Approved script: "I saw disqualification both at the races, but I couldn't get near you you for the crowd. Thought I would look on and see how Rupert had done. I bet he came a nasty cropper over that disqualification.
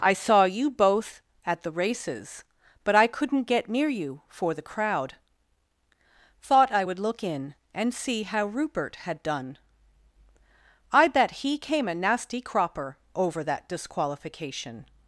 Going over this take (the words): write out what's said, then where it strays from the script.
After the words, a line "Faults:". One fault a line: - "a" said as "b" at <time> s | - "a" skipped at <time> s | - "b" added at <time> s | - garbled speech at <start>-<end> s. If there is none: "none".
"I saw you both at the races, but I couldn't get near you for the crowd. Thought I would look in and see how Rupert had done. I bet he came a nasty cropper over that disqualification.
Faults:
- "disqualification" said as "you" at 0.5 s
- "you" skipped at 4.2 s
- "on" said as "in" at 7.2 s